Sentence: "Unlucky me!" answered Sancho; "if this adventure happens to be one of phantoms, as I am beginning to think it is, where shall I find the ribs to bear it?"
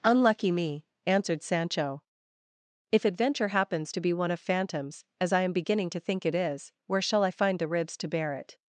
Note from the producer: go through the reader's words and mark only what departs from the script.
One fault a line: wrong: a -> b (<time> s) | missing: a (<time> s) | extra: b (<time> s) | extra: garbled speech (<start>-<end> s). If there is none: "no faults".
missing: this (3.0 s)